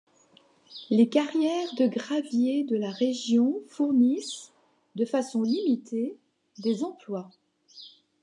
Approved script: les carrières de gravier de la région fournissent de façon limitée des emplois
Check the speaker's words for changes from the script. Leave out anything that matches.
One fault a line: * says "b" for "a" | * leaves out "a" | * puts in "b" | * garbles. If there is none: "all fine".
all fine